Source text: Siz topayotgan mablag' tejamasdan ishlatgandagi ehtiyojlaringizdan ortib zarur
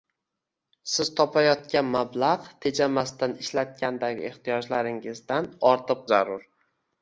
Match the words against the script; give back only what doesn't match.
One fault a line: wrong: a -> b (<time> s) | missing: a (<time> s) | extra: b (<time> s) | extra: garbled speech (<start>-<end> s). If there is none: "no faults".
no faults